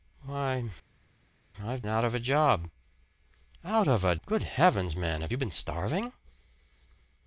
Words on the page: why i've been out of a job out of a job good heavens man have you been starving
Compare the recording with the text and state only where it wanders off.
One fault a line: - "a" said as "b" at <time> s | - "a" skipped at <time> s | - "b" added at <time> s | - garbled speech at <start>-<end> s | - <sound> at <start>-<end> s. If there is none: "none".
- "been" skipped at 1.8 s
- "job" skipped at 4.2 s